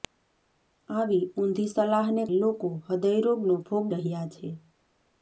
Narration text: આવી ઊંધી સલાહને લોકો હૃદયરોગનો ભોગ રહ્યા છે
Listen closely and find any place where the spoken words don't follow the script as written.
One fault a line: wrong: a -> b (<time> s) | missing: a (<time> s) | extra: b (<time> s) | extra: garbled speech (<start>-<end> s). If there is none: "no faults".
no faults